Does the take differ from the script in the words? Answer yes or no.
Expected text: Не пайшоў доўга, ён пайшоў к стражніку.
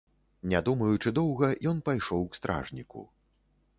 yes